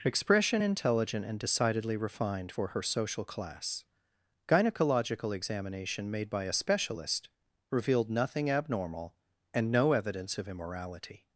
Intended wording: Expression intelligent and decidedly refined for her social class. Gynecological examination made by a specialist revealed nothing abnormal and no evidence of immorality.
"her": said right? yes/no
yes